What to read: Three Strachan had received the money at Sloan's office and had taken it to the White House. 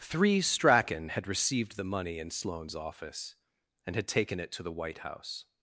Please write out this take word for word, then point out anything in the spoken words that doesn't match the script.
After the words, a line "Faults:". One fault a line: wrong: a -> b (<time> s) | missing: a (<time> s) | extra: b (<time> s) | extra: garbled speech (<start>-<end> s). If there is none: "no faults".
Three Strachan had received the money in Sloan's office and had taken it to the White House.
Faults:
wrong: at -> in (2.2 s)